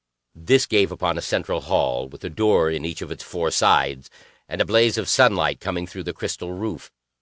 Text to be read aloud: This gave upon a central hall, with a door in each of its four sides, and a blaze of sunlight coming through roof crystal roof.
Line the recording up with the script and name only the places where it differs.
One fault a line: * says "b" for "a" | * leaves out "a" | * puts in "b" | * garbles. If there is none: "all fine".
* says "the" for "roof"